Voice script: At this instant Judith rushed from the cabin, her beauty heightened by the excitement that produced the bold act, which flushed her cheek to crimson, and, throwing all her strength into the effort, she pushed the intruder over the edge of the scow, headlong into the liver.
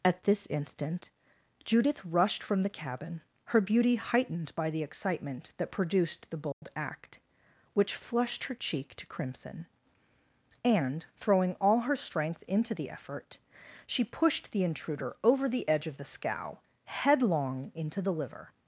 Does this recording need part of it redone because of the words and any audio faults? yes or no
yes